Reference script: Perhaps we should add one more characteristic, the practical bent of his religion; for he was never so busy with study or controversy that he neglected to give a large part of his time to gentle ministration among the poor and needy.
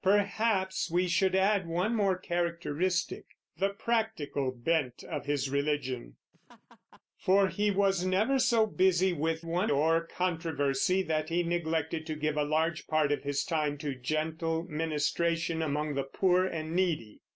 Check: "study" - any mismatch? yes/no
yes